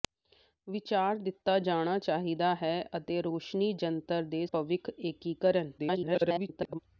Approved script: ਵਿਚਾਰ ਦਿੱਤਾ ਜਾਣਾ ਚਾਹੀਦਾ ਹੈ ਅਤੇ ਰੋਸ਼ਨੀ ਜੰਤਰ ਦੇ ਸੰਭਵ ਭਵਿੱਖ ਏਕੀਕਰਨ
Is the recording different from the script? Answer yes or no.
yes